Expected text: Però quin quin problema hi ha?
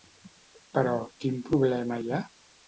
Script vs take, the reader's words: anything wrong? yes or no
yes